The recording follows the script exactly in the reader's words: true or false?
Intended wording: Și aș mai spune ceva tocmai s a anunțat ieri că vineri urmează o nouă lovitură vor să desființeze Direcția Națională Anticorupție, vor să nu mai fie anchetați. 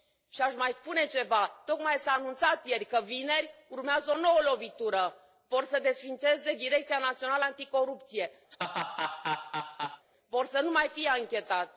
true